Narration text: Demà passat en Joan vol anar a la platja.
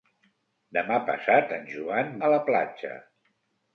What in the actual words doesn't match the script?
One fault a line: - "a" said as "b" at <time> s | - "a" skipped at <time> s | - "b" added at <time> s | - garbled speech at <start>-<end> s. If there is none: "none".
- "vol anar" skipped at 2.1 s